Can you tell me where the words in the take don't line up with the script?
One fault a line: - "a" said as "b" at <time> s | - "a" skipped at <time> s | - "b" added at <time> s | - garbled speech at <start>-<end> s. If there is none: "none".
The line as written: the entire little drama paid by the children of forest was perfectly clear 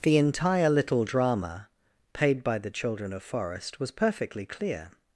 none